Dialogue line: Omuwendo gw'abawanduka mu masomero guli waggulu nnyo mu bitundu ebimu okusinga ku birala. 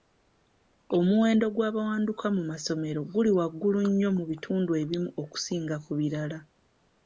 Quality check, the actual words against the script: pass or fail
pass